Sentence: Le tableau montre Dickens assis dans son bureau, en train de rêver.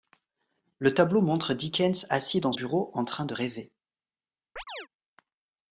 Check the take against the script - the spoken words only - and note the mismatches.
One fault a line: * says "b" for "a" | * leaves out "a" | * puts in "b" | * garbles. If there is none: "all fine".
* leaves out "son"